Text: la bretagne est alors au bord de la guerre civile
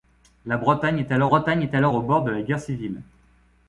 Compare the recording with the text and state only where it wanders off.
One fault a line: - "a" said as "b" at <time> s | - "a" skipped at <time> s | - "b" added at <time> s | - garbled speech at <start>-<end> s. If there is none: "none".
- "bretagne est alors" added at 1.2 s